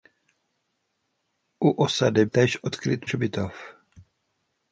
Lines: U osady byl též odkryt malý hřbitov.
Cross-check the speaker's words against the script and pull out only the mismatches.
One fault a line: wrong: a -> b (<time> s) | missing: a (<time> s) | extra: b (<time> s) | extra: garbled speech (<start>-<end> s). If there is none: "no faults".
missing: byl (2.2 s)
missing: malý (3.1 s)